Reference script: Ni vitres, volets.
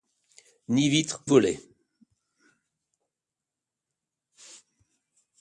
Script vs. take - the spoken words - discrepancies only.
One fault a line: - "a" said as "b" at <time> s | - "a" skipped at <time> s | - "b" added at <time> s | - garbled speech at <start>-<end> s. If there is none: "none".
none